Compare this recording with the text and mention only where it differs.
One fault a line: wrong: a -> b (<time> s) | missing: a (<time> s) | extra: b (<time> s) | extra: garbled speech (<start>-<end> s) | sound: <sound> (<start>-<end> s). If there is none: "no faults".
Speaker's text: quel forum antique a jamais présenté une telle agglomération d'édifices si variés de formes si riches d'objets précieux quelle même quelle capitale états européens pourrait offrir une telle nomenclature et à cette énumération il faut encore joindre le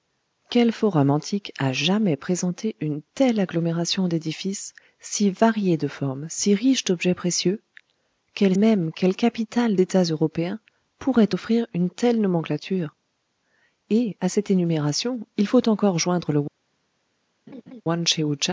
sound: laugh (17.5-17.8 s)